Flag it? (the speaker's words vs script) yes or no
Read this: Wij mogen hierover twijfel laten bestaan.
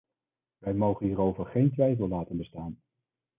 yes